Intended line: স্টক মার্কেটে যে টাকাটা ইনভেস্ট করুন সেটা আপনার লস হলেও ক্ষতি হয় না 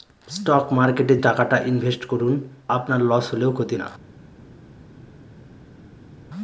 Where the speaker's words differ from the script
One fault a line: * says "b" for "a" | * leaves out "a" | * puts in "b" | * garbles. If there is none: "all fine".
* leaves out "যে"
* leaves out "সেটা"
* leaves out "হয়"